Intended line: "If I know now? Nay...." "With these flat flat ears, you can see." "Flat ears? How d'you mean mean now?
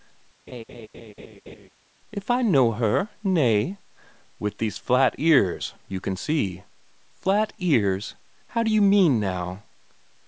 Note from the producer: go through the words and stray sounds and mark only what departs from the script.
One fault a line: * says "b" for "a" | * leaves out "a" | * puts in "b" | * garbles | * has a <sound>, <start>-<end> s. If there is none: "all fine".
* has a laugh, 0.5-1.7 s
* says "her" for "now"
* leaves out "flat"
* leaves out "mean"